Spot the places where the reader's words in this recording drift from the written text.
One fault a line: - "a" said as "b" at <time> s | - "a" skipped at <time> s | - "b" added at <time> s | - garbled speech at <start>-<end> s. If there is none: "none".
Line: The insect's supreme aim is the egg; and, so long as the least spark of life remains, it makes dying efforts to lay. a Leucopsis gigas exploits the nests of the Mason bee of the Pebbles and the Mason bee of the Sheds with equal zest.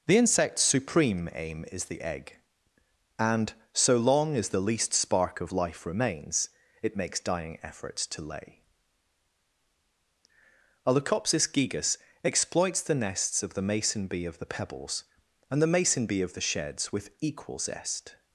none